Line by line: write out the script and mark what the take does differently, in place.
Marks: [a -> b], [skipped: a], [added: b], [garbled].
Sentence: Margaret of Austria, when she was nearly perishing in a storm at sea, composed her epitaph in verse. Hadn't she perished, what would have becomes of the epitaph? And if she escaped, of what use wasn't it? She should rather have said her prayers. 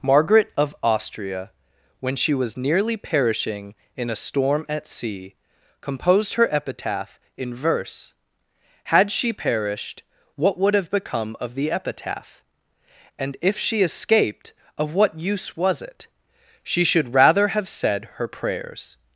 Margaret of Austria, when she was nearly perishing in a storm at sea, composed her epitaph in verse. [Hadn't -> Had] she perished, what would have [becomes -> become] of the epitaph? And if she escaped, of what use [wasn't -> was] it? She should rather have said her prayers.